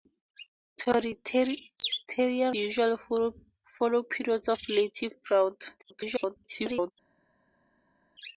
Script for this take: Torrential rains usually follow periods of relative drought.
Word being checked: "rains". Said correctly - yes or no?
no